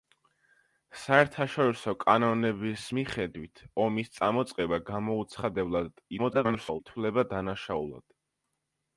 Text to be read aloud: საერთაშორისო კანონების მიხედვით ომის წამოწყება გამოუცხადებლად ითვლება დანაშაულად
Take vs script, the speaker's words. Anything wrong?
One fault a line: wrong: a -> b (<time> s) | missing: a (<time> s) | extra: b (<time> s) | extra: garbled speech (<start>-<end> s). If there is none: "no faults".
extra: garbled speech (6.2-6.8 s)